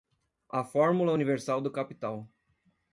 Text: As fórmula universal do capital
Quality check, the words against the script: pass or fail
fail